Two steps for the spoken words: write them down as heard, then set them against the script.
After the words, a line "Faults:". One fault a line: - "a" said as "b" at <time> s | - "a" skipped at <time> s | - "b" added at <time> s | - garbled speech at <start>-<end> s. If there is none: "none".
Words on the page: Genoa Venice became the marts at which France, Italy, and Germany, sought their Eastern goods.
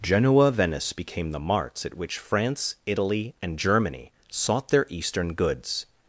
Genoa Venice became the marts at which France, Italy, and Germany, sought their Eastern goods.
Faults:
none